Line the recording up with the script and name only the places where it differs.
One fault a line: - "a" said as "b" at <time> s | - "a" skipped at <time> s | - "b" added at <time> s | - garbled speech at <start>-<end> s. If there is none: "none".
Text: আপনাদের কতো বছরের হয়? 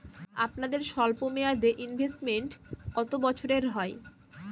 - "স্বল্পমেয়াদে ইনভেস্টমেন্ট" added at 0.8 s